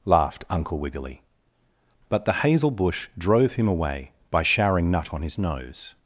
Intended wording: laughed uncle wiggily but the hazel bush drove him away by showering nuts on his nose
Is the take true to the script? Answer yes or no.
no